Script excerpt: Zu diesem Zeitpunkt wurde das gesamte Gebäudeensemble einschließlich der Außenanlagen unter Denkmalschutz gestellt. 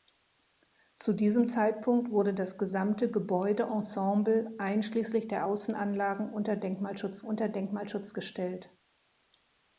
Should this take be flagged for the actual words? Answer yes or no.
yes